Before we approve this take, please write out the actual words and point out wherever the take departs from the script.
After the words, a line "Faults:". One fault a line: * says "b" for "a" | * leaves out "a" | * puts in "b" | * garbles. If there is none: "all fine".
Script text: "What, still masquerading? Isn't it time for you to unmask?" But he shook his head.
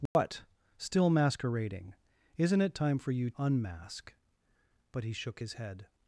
"What, still masquerading? Isn't it time for you unmask?" But he shook his head.
Faults:
* leaves out "to"